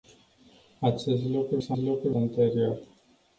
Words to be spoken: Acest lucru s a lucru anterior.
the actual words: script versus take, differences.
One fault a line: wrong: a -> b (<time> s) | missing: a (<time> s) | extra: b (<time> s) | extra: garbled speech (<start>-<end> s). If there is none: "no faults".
no faults